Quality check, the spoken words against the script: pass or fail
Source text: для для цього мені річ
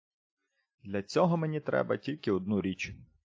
fail